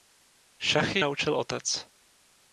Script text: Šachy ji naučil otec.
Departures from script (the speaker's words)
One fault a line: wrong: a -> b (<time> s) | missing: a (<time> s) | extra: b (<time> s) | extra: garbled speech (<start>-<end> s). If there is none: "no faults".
missing: ji (1.0 s)